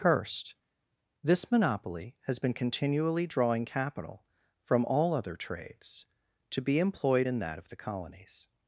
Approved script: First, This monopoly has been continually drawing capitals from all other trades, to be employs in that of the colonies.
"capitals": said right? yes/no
no